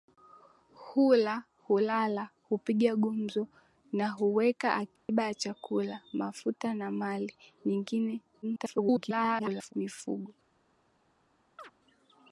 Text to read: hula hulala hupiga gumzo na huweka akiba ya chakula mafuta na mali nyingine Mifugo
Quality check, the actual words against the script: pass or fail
fail